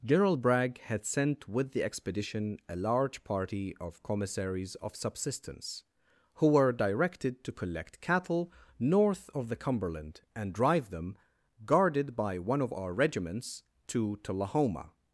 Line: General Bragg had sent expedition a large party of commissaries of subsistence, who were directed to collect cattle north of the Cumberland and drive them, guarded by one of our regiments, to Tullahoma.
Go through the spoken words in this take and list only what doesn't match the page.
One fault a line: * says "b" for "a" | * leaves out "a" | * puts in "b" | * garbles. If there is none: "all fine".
* puts in "with the"